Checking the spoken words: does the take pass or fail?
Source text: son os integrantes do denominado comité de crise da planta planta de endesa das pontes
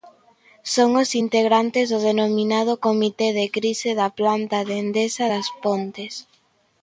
fail